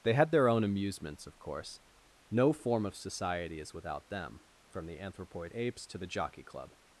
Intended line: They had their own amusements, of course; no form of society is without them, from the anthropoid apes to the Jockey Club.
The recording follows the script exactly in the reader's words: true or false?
true